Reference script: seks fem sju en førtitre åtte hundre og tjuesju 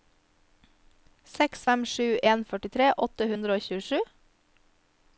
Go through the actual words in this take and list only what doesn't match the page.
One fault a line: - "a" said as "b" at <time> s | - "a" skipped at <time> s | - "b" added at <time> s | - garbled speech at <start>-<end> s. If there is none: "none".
none